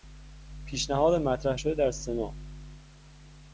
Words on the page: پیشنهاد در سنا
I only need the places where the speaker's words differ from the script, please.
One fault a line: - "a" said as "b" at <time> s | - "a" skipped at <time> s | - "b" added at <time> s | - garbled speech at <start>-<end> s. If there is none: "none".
- "مطرح شده" added at 1.2 s